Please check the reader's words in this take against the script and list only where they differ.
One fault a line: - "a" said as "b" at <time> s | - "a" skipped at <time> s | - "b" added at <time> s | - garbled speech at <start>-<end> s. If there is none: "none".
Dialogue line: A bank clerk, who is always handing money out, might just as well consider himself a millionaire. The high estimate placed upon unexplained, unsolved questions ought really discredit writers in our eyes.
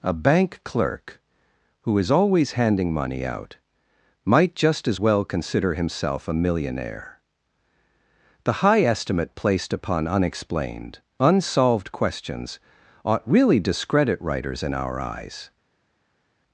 none